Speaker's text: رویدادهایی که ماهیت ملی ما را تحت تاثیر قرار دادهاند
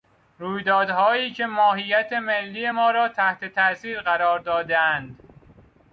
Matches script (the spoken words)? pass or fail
pass